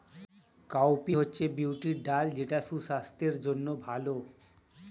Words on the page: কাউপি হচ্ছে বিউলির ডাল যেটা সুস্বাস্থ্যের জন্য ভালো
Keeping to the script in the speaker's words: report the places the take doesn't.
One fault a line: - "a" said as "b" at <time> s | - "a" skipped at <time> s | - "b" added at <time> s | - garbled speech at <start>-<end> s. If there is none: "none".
none